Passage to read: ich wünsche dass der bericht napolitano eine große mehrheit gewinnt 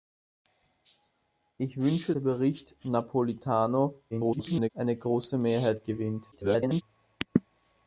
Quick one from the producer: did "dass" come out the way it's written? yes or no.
no